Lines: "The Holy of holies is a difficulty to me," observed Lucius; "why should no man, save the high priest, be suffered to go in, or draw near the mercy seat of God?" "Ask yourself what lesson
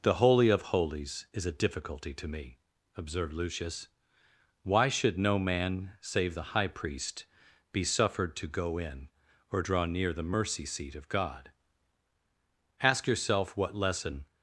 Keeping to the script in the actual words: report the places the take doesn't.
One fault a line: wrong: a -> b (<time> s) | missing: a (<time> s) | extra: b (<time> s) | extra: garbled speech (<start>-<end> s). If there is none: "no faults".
no faults